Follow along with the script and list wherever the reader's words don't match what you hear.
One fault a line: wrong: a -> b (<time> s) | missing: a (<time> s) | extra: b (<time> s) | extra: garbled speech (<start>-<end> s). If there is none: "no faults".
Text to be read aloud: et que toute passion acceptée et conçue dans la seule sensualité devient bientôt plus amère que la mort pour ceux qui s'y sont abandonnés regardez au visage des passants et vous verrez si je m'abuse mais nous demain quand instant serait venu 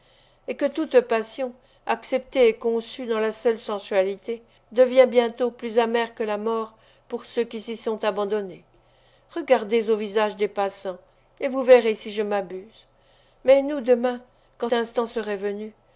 no faults